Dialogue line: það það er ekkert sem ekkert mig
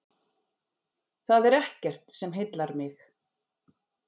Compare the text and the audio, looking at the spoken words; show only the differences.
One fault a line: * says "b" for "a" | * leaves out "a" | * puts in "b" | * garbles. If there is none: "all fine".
* leaves out "það"
* says "heillar" for "ekkert"